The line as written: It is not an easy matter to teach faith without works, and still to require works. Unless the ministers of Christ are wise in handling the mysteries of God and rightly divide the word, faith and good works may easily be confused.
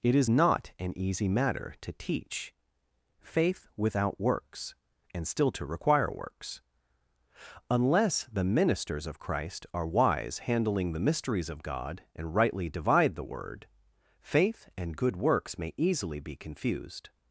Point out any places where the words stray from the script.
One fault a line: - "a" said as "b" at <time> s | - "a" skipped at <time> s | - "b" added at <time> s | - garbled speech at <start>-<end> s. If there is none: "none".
- "in" skipped at 10.4 s